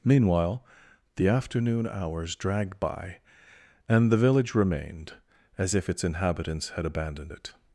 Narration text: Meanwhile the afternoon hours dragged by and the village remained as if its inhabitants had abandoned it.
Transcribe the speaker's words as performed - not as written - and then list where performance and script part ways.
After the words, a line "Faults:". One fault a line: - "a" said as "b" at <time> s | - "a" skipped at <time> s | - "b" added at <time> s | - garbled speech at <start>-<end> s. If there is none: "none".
Meanwhile the afternoon hours dragged by and the village remained as if its inhabitants had abandoned it.
Faults:
none